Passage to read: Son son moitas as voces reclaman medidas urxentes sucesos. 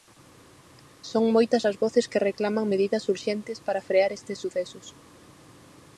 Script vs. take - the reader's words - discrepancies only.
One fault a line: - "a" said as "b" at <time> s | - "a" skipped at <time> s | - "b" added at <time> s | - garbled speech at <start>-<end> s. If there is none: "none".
- "son" skipped at 1.2 s
- "que" added at 2.1 s
- "para frear estes" added at 3.7 s